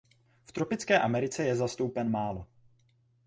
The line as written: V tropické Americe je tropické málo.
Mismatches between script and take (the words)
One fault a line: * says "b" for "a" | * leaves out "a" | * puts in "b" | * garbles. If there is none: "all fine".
* says "zastoupen" for "tropické"